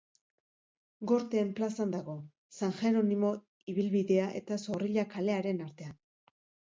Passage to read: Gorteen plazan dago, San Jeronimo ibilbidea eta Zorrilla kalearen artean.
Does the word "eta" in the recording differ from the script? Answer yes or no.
no